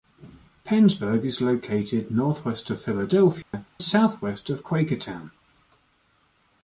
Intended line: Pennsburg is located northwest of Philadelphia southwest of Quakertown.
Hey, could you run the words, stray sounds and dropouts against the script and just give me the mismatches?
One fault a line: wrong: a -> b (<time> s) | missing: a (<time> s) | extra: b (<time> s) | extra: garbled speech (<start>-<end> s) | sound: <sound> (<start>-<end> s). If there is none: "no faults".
sound: dropout (3.4-3.5 s)